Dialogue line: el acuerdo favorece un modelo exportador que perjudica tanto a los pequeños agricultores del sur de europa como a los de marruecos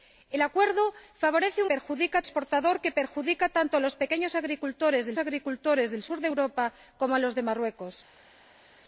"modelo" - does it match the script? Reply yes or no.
no